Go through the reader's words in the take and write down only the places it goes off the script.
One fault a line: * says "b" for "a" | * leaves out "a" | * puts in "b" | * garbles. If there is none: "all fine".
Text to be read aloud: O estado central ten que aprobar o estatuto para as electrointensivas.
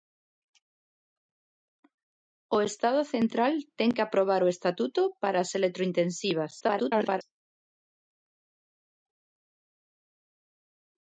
* garbles